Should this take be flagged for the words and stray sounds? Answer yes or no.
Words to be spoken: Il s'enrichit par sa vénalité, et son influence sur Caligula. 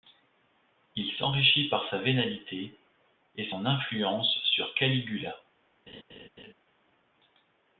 yes